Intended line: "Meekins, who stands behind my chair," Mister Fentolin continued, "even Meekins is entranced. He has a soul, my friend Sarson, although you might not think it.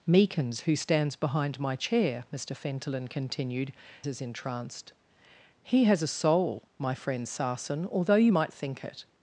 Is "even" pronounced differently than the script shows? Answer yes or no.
yes